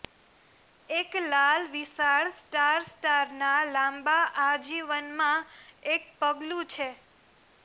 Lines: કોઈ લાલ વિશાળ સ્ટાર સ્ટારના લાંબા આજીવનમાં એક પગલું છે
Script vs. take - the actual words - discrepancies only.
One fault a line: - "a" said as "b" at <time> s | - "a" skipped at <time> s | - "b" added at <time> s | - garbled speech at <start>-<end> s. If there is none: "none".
- "કોઈ" said as "એક" at 0.9 s